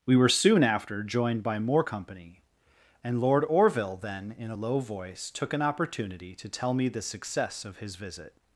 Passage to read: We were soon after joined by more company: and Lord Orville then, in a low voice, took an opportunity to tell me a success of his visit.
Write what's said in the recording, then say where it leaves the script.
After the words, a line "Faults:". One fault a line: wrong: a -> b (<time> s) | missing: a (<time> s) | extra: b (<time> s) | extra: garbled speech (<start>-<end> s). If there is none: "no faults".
We were soon after joined by more company: and Lord Orville then, in a low voice, took an opportunity to tell me the success of his visit.
Faults:
wrong: a -> the (6.9 s)